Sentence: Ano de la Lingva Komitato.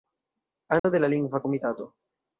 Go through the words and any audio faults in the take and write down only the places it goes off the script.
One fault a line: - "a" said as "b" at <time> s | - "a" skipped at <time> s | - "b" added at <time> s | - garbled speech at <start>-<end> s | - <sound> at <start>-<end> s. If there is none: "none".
- dropout at 0.8-0.8 s